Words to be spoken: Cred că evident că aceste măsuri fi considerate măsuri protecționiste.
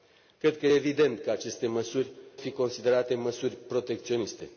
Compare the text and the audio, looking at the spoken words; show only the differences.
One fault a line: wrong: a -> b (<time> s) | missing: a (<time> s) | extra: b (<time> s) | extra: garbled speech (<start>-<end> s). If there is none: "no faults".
no faults